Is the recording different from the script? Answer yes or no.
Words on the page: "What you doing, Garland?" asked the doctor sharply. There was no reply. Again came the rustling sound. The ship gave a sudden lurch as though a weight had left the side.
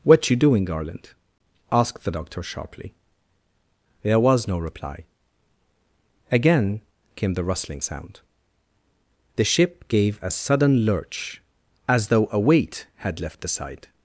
no